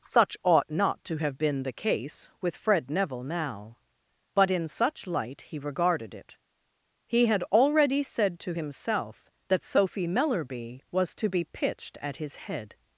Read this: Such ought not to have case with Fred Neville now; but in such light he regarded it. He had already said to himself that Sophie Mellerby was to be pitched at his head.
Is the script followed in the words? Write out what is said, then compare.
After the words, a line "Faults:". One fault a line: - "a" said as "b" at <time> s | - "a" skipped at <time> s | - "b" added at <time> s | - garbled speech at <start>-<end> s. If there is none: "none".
Such ought not to have been the case with Fred Neville now; but in such light he regarded it. He had already said to himself that Sophie Mellerby was to be pitched at his head.
Faults:
- "been the" added at 1.4 s